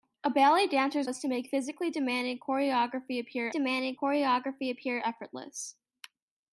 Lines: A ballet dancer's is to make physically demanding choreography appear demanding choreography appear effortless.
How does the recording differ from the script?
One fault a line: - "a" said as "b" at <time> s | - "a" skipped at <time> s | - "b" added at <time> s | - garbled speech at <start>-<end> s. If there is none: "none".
none